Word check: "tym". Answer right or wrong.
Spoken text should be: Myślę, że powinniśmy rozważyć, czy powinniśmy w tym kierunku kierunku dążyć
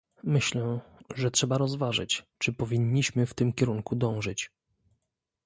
right